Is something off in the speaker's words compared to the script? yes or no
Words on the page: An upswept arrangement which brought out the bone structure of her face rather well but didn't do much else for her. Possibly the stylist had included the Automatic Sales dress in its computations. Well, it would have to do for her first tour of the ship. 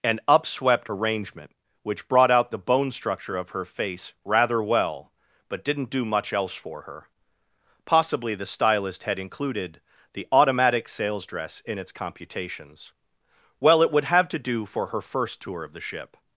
no